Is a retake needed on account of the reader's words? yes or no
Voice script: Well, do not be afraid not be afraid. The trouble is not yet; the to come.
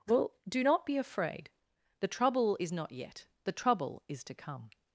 yes